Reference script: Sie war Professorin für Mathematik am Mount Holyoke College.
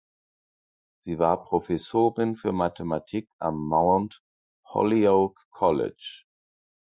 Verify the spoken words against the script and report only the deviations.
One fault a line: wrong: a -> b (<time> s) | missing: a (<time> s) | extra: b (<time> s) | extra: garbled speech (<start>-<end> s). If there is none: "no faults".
no faults